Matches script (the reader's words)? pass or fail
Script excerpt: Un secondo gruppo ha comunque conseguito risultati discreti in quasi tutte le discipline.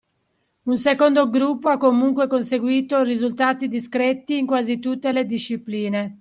pass